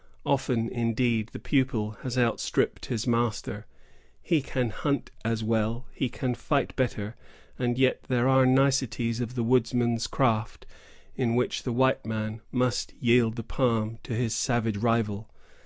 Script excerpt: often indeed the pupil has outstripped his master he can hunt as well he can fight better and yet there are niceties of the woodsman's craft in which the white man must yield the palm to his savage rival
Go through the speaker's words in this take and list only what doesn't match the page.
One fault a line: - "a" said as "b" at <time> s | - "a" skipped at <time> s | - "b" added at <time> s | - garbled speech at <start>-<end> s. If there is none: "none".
none